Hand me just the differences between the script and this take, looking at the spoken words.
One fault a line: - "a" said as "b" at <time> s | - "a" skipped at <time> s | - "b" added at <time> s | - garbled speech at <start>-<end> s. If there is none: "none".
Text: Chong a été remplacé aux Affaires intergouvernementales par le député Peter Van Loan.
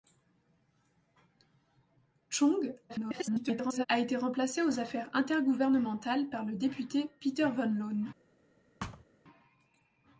- garbled speech at 2.9-3.9 s